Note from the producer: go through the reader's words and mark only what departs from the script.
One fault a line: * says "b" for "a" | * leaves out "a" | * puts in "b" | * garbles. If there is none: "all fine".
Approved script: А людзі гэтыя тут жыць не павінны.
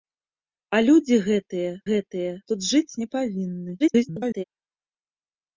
* puts in "гэтыя"
* garbles